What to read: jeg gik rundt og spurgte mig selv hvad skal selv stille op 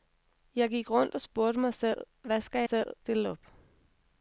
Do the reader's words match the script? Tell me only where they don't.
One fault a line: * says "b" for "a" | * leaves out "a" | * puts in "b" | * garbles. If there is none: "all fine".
all fine